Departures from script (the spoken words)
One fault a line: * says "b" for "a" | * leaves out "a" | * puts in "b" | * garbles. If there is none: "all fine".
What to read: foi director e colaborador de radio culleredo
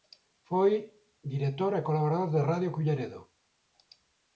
all fine